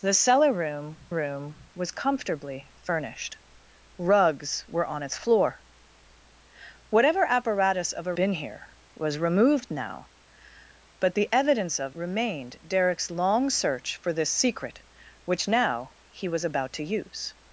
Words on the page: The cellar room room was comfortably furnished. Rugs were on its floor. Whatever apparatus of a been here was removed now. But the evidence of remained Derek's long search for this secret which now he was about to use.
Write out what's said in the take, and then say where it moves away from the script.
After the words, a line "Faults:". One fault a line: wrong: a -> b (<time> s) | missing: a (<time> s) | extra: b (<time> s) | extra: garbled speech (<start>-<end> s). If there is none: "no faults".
The cellar room room was comfortably furnished. Rugs were on its floor. Whatever apparatus of a been here was removed now. But the evidence of remained Derek's long search for this secret which now he was about to use.
Faults:
no faults